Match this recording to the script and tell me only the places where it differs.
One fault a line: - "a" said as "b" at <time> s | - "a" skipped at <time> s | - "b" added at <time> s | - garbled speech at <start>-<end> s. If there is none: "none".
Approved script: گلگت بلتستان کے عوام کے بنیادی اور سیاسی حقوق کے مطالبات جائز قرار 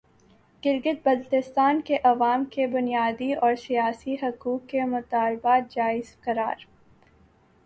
none